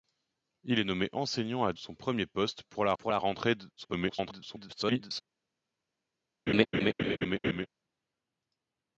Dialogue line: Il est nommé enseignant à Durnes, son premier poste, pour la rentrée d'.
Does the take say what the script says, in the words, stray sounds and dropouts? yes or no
no